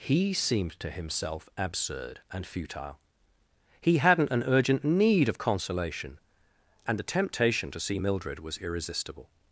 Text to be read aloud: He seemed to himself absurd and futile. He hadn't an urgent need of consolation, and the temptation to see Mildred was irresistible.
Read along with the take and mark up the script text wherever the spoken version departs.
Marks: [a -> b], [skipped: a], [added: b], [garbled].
He seemed to himself absurd and futile. He hadn't an urgent need of consolation, and the temptation to see Mildred was irresistible.